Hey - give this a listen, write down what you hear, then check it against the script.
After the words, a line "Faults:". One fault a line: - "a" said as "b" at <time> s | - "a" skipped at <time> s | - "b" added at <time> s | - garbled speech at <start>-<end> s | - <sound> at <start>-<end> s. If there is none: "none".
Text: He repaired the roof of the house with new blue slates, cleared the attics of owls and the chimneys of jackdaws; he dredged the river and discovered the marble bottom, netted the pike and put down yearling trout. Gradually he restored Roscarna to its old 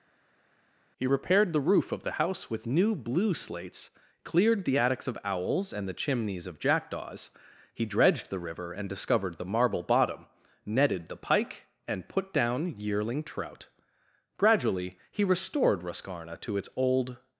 He repaired the roof of the house with new blue slates, cleared the attics of owls and the chimneys of jackdaws; he dredged the river and discovered the marble bottom, netted the pike and put down yearling trout. Gradually he restored Roscarna to its old
Faults:
none